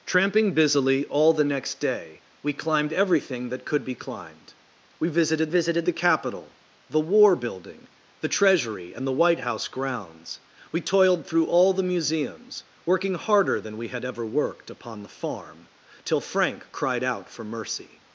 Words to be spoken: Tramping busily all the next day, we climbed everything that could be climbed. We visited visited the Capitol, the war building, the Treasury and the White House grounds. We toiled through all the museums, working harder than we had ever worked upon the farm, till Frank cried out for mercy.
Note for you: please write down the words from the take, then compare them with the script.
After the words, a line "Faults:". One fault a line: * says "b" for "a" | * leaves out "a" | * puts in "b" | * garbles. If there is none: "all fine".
Tramping busily all the next day, we climbed everything that could be climbed. We visited visited the Capitol, the war building, the Treasury and the White House grounds. We toiled through all the museums, working harder than we had ever worked upon the farm, till Frank cried out for mercy.
Faults:
all fine